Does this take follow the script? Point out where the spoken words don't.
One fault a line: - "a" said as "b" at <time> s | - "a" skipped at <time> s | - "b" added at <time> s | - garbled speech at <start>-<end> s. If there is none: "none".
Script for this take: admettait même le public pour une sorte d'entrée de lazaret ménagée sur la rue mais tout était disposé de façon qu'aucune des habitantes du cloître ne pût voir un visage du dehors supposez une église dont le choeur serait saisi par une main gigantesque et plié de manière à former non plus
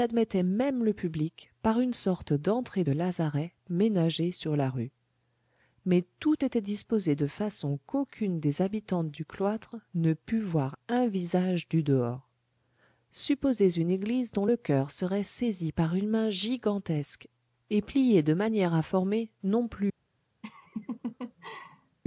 - "pour" said as "par" at 1.6 s